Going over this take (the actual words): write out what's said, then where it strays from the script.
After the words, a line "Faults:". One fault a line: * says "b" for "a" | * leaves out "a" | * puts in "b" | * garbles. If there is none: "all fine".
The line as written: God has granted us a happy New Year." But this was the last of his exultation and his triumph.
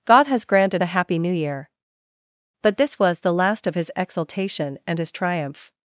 God has granted a happy New Year." But this was the last of his exultation and his triumph.
Faults:
* leaves out "us"